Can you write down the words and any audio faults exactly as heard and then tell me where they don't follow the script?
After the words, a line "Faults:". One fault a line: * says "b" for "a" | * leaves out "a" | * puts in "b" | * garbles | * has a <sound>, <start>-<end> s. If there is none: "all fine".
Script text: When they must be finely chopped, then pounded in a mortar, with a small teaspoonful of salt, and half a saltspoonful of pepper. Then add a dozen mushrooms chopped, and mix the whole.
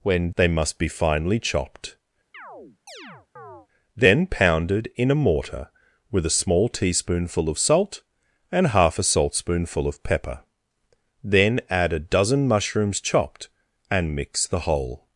When they must be finely chopped, then pounded in a mortar, with a small teaspoonful of salt, and half a saltspoonful of pepper. Then add a dozen mushrooms chopped, and mix the whole.
Faults:
* has a chirp, 2.3-3.7 s